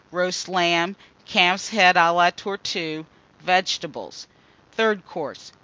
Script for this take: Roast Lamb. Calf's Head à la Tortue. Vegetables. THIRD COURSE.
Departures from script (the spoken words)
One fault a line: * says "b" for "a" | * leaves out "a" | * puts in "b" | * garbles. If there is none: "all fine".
all fine